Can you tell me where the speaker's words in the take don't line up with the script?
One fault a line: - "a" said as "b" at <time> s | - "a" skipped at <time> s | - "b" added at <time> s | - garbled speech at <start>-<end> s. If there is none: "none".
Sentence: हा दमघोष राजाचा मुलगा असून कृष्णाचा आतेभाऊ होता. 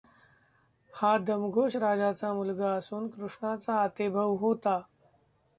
none